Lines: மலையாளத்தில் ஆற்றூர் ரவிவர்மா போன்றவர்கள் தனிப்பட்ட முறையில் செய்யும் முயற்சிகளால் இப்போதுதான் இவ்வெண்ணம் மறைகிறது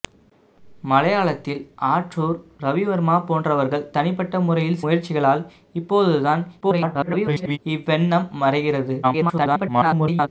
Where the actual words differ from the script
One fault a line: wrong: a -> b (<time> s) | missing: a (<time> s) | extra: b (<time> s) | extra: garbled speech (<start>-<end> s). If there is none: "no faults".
missing: செய்யும் (4.8 s)
extra: garbled speech (6.6-7.6 s)
extra: garbled speech (9.0-10.3 s)